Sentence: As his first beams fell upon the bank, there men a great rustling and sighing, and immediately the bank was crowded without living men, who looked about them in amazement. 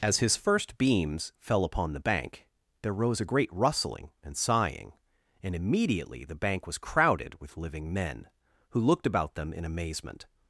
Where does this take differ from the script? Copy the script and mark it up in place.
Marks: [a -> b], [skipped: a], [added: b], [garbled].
As his first beams fell upon the bank, there [men -> rose] a great rustling and sighing, and immediately the bank was crowded [without -> with] living men, who looked about them in amazement.